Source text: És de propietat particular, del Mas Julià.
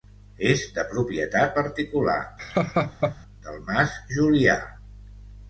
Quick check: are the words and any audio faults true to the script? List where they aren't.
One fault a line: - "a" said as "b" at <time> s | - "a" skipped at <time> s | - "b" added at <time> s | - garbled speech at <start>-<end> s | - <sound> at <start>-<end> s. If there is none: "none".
- laugh at 2.4-3.2 s